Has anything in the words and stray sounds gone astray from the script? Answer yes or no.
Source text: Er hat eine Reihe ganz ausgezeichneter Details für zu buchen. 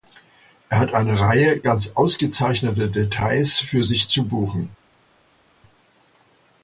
yes